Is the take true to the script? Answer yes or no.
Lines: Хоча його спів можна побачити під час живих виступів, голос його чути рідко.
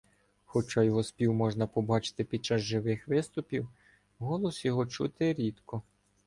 yes